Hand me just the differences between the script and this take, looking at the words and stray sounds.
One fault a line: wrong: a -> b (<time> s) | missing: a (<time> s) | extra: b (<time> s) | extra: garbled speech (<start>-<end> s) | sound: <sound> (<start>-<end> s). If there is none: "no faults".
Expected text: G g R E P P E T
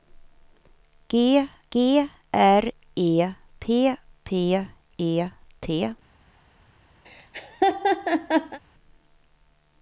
sound: laugh (7.0-8.6 s)